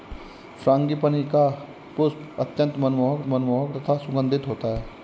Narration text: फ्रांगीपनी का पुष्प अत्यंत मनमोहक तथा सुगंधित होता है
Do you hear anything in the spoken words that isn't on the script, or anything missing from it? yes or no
yes